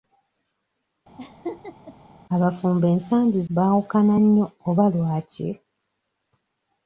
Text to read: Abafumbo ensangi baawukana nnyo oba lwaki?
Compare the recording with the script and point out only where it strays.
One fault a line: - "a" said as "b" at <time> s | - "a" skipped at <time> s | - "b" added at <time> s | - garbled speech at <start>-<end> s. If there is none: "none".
none